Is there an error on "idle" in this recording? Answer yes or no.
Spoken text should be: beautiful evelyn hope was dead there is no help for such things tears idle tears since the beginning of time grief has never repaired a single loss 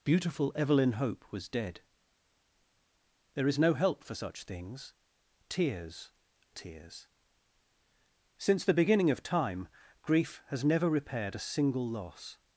yes